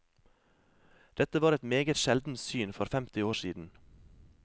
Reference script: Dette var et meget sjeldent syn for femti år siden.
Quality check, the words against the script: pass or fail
pass